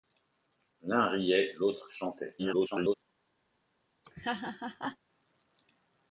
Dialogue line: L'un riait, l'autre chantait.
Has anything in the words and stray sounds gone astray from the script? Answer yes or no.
yes